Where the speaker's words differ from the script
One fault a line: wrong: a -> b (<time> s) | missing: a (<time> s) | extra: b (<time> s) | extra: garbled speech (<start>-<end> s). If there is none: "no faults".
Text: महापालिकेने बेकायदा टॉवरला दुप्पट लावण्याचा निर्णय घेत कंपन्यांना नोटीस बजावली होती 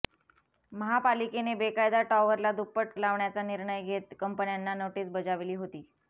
no faults